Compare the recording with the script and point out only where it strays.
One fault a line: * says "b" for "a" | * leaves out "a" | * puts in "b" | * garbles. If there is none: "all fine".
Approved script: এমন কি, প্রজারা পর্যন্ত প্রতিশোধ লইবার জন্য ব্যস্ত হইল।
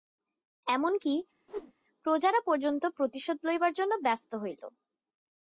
all fine